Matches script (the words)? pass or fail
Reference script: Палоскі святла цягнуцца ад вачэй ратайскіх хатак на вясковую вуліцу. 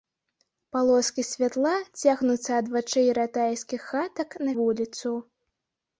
fail